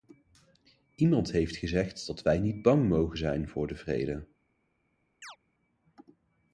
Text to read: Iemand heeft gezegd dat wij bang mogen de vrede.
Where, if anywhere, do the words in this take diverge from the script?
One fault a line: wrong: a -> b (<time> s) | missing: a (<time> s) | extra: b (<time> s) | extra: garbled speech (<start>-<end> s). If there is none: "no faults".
extra: niet (2.4 s)
extra: zijn voor (3.2 s)